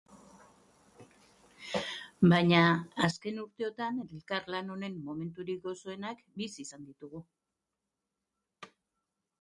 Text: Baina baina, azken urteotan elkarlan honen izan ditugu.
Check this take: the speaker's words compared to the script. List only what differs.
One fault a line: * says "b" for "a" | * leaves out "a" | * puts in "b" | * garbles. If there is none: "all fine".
* leaves out "baina"
* puts in "momenturik gozoenak bizi"